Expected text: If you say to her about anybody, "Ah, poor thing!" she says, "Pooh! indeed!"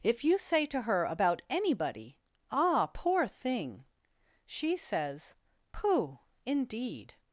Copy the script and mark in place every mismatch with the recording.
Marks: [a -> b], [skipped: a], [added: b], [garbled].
If you say to her about anybody, "Ah, poor thing!" she says, "Pooh! indeed!"